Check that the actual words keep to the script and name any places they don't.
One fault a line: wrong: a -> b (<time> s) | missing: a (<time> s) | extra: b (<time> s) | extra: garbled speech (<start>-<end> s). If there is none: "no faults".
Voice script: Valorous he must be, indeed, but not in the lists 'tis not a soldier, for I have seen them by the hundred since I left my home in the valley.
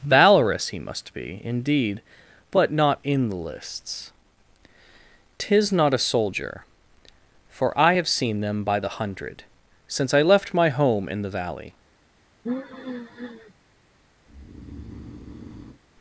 no faults